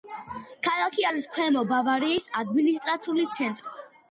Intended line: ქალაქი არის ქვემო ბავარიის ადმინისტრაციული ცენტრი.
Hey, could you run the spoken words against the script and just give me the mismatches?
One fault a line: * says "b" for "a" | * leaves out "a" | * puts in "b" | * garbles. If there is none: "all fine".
all fine